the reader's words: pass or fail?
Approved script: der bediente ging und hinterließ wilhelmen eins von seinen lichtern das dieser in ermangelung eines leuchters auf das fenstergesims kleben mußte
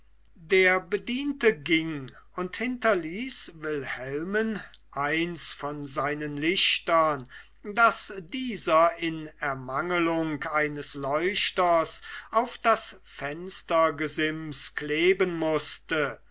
pass